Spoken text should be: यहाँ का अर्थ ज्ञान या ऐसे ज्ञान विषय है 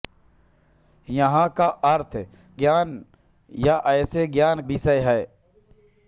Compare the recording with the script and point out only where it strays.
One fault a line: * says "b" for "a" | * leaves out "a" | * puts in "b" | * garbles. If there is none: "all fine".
all fine